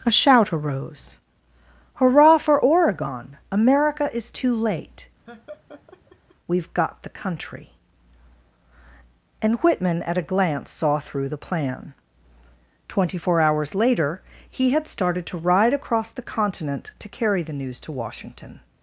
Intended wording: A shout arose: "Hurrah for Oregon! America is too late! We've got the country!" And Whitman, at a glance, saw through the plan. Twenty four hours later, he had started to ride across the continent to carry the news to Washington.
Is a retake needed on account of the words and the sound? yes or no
yes